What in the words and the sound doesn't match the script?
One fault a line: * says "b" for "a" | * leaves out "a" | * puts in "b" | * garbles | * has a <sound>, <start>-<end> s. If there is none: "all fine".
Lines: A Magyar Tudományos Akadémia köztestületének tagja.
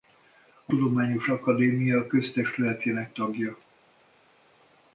* leaves out "Magyar"